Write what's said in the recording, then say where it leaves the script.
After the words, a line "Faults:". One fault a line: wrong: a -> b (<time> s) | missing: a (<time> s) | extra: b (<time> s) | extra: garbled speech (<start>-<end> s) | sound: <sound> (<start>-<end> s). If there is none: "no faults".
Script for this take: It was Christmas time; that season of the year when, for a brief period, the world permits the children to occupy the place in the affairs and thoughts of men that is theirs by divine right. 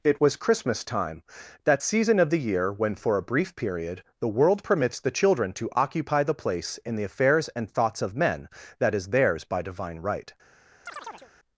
It was Christmas time; that season of the year when, for a brief period, the world permits the children to occupy the place in the affairs and thoughts of men that is theirs by divine right.
Faults:
sound: chirp (10.9-11.3 s)